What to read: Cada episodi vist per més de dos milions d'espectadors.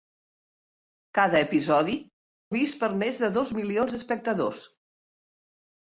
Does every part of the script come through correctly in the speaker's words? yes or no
yes